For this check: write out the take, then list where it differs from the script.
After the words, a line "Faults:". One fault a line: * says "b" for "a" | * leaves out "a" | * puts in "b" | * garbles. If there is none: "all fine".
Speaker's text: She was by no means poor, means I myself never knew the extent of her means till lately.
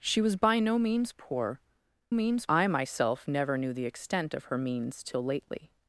She was by no means poor, means I myself never knew the extent of her means till lately.
Faults:
all fine